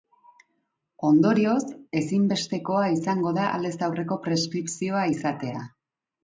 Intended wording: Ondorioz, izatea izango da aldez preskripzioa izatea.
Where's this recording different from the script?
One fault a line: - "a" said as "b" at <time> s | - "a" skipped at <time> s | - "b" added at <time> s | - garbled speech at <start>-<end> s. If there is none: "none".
- "izatea" said as "ezinbestekoa" at 2.0 s
- "aurreko" added at 3.9 s